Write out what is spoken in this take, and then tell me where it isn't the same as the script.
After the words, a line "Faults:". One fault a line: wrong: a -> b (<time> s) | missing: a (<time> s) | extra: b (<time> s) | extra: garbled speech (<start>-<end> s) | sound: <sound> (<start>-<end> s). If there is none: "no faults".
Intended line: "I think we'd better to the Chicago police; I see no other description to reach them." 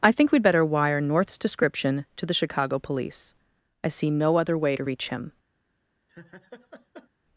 "I think we'd better wire North's description to the Chicago police; I see no other way to reach him."
Faults:
extra: wire North's description (0.7 s)
wrong: description -> way (4.6 s)
wrong: them -> him (5.1 s)
sound: laugh (6.1-7.1 s)